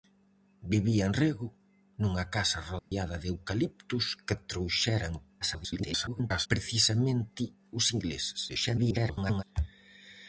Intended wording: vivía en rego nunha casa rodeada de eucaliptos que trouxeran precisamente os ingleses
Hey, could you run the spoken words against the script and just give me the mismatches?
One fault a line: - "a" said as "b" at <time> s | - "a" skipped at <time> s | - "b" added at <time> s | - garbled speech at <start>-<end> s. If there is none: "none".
- garbled speech at 5.4-6.5 s
- garbled speech at 8.5-9.4 s